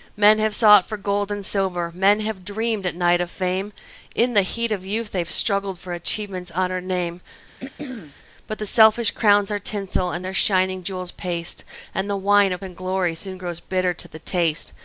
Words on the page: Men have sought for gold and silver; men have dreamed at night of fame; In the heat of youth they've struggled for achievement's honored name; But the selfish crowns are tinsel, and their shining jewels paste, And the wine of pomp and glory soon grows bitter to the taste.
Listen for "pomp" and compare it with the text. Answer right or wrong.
wrong